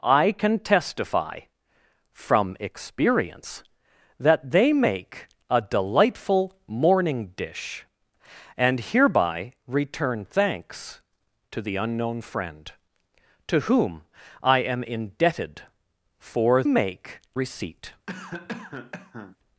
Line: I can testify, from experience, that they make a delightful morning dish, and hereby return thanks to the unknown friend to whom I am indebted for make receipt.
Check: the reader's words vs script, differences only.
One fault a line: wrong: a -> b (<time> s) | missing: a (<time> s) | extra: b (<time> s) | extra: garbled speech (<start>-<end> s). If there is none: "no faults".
no faults